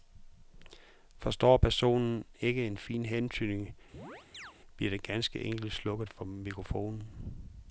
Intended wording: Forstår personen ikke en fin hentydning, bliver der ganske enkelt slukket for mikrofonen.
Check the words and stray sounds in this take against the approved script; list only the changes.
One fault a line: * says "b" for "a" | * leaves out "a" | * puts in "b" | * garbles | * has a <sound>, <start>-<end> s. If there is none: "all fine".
* has a chirp, 3.9-4.5 s